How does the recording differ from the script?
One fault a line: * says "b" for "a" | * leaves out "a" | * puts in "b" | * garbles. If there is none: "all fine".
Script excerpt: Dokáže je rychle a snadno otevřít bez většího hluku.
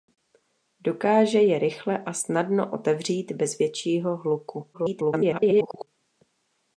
* garbles